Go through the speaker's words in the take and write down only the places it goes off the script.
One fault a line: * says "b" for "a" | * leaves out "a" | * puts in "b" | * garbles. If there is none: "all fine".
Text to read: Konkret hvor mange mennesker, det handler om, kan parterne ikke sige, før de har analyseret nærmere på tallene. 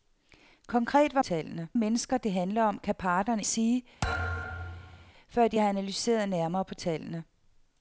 * says "tallene" for "mange"
* leaves out "ikke"